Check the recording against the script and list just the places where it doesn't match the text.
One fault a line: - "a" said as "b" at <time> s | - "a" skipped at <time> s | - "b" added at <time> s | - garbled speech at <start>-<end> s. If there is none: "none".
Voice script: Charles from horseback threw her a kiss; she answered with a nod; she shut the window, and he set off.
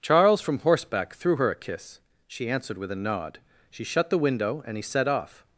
none